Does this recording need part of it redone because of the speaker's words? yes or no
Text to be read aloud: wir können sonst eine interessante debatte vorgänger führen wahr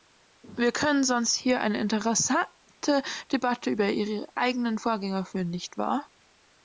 yes